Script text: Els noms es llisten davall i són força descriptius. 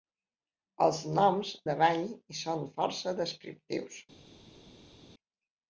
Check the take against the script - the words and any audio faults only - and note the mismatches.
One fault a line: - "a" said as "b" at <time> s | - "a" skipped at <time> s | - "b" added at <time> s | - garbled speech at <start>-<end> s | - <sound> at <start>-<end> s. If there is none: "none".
- "es llisten" skipped at 1.5 s